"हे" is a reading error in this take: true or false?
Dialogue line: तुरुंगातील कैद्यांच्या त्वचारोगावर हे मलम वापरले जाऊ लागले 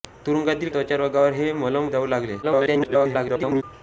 false